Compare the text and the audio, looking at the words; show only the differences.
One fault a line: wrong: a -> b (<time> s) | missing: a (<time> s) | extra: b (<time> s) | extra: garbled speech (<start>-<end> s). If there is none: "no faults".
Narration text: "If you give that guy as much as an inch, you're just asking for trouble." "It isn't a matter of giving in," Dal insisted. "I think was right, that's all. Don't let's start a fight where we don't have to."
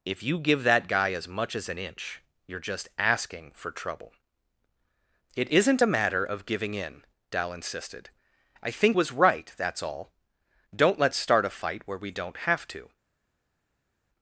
no faults